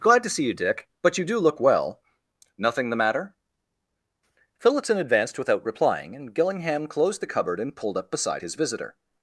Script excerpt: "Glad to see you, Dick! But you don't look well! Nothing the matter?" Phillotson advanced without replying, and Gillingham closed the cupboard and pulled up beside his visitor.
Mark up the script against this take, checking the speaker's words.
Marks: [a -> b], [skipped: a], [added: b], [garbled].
"Glad to see you, Dick! But you [don't -> do] look well! Nothing the matter?" Phillotson advanced without replying, and Gillingham closed the cupboard and pulled up beside his visitor.